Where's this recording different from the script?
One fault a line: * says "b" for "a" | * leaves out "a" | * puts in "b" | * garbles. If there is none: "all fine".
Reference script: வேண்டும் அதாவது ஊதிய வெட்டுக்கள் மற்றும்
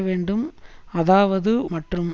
* leaves out "ஊதிய வெட்டுக்கள்"